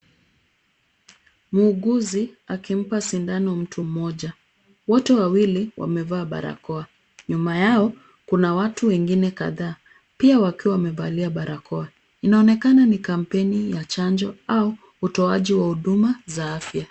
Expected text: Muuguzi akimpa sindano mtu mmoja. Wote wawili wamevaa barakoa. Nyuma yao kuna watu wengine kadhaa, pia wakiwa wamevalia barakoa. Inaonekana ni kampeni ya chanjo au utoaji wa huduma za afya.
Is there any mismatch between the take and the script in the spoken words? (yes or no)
no